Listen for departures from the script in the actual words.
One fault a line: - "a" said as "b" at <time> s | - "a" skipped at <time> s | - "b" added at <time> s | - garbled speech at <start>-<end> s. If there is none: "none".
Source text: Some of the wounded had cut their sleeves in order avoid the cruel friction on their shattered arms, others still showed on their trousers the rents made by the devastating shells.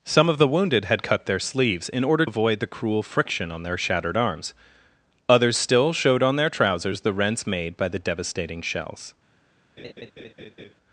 none